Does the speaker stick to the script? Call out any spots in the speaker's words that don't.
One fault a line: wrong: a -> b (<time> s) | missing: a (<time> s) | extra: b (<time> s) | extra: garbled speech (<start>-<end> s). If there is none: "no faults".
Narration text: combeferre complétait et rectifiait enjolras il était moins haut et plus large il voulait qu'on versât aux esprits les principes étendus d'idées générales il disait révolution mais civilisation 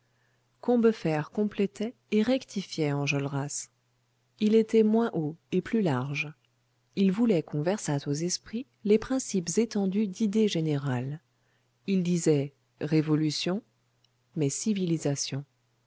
no faults